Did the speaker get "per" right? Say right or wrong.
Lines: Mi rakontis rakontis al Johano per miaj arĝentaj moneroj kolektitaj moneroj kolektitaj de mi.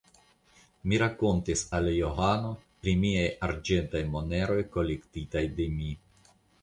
wrong